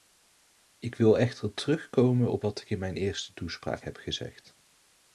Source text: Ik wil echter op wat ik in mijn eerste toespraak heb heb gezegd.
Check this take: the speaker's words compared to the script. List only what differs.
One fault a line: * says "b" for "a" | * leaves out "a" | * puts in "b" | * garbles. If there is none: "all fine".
* puts in "terugkomen"
* leaves out "heb"